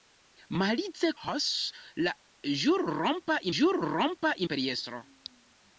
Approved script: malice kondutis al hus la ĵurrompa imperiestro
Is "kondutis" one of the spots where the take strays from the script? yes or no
yes